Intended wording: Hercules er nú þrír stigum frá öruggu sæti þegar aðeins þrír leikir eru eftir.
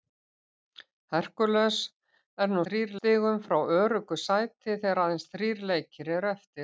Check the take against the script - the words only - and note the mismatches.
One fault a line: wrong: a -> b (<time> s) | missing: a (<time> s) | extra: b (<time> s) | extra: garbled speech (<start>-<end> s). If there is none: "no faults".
no faults